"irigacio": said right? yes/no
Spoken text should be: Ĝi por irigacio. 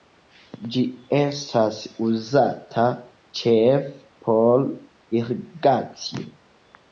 yes